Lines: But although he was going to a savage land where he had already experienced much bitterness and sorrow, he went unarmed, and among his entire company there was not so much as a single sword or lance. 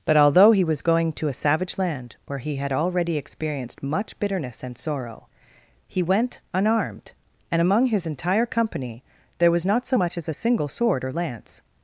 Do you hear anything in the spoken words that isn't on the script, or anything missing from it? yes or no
no